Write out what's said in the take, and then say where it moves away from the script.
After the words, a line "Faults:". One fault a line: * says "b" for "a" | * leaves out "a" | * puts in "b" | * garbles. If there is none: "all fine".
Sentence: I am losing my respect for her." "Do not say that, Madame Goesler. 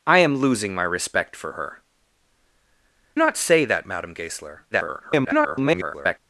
I am losing my respect for her." "Not say that, Madame Goesler. [garbled]
Faults:
* leaves out "Do"
* garbles